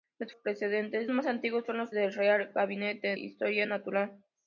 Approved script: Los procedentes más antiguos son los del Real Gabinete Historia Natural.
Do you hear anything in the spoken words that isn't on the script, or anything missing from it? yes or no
no